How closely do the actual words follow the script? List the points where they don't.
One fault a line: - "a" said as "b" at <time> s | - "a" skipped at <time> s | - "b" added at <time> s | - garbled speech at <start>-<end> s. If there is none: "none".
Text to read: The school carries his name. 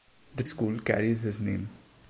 none